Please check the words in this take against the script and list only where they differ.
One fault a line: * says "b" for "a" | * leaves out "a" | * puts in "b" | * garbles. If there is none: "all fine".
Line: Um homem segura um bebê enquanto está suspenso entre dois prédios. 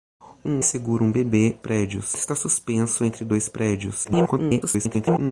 * leaves out "homem"
* says "prédios" for "enquanto"
* garbles